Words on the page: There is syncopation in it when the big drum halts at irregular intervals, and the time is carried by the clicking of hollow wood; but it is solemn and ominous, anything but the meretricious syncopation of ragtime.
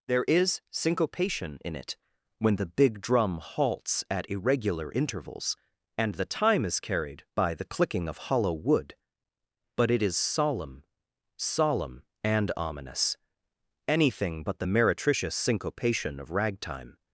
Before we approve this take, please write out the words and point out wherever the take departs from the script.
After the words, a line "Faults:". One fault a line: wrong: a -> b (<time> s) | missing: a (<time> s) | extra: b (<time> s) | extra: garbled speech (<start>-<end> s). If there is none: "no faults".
There is syncopation in it when the big drum halts at irregular intervals, and the time is carried by the clicking of hollow wood; but it is solemn solemn and ominous, anything but the meretricious syncopation of ragtime.
Faults:
extra: solemn (11.4 s)